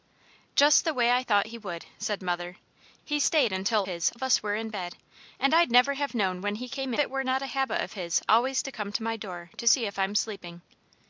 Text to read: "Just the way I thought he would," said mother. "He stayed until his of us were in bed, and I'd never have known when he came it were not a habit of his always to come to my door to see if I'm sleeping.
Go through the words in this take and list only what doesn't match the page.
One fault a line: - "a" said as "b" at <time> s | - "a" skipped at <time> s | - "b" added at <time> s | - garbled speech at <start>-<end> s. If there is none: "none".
none